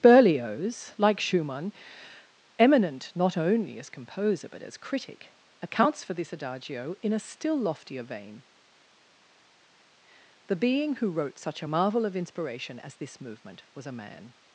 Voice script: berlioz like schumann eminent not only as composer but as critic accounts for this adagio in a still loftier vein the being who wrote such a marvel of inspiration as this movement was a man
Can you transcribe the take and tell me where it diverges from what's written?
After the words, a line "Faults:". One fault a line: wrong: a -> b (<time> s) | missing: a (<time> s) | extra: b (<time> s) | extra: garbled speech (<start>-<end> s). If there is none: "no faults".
berlioz like schumann eminent not only as composer but as critic accounts for this adagio in a still loftier vein the being who wrote such a marvel of inspiration as this movement was a man
Faults:
no faults